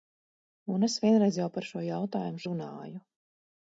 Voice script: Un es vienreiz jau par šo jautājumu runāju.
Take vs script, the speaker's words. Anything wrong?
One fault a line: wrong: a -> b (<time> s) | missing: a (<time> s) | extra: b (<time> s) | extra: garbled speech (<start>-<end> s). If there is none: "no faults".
no faults